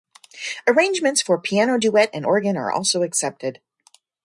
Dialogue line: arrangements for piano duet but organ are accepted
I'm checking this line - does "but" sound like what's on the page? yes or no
no